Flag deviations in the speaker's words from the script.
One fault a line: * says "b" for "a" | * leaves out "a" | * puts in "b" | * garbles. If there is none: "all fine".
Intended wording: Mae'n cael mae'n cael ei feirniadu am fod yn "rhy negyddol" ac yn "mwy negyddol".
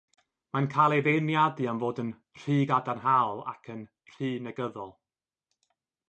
* leaves out "mae'n cael"
* says "gadarnhaol" for "negyddol"
* says "rhy" for "mwy"